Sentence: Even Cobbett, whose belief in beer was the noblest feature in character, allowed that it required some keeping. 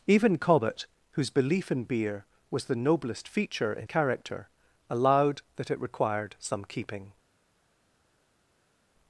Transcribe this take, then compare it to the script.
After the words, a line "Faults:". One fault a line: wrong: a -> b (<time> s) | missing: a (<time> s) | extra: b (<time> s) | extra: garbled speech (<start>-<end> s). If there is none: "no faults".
Even Cobbett, whose belief in beer was the noblest feature in character, allowed that it required some keeping.
Faults:
no faults